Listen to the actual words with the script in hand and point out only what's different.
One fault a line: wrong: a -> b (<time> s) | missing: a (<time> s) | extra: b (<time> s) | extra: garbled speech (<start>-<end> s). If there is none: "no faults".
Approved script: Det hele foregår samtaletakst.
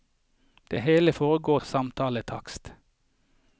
no faults